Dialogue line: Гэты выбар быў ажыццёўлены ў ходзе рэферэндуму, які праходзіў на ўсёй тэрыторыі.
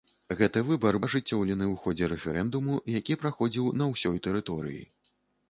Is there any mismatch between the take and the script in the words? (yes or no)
yes